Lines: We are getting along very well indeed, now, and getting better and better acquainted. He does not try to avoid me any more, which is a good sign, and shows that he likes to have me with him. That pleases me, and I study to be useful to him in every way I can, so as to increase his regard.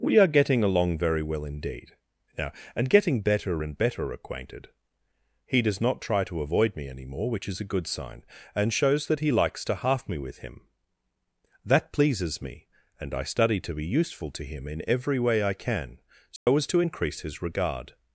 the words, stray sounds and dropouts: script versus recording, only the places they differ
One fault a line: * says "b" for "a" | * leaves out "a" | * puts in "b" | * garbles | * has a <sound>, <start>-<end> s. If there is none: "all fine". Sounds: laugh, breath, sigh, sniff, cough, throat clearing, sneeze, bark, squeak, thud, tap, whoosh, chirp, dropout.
* says "half" for "have"
* has a dropout, 16.4-16.5 s